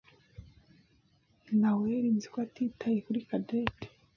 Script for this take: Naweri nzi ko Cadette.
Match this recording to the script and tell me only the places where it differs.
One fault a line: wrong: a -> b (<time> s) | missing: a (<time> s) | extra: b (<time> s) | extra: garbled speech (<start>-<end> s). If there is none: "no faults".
extra: atitaye kuri (2.5 s)